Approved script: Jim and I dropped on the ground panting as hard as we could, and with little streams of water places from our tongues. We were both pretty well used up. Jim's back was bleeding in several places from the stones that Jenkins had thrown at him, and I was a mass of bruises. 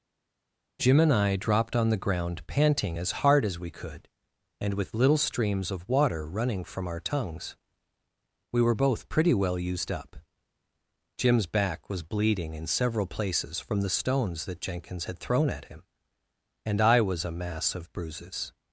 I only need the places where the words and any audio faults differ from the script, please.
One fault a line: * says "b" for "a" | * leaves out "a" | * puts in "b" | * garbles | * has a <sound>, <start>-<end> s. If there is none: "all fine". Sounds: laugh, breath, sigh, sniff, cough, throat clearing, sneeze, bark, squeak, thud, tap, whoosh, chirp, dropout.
* says "running" for "places"